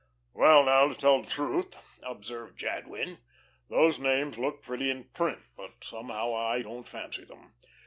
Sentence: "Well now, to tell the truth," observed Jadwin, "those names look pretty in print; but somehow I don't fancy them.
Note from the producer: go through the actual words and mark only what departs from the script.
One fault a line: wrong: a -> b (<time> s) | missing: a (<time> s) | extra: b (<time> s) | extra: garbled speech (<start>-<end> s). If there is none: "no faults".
no faults